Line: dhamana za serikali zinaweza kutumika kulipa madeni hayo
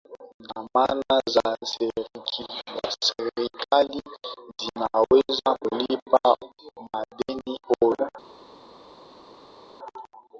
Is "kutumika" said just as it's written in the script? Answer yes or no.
no